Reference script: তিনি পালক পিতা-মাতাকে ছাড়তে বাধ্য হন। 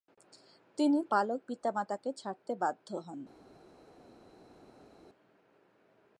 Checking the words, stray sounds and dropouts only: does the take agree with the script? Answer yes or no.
yes